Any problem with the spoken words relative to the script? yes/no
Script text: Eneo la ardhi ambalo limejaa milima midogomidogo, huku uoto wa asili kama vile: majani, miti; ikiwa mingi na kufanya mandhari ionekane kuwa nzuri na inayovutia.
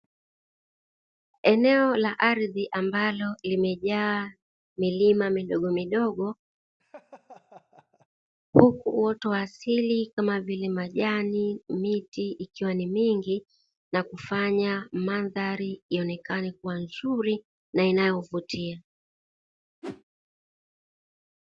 yes